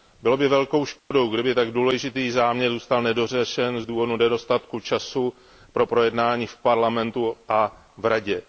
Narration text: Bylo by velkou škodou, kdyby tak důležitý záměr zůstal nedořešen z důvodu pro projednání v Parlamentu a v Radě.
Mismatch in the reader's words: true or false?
true